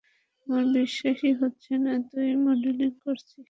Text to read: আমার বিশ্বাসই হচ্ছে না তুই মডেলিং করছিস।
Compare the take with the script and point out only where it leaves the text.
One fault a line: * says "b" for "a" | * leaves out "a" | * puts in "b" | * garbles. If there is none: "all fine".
all fine